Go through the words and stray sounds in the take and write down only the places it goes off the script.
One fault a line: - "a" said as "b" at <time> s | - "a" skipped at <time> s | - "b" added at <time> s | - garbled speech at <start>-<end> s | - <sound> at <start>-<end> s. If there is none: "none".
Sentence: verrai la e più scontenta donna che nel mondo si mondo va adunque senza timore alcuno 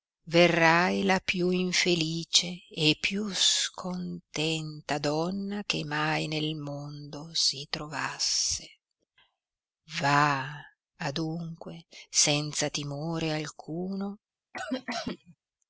- "più infelice" added at 1.2 s
- "mai" added at 5.8 s
- "mondo" said as "trovasse" at 7.7 s
- cough at 14.5-15.4 s